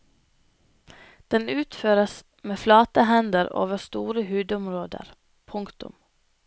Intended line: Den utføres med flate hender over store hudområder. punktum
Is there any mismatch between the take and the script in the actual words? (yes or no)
no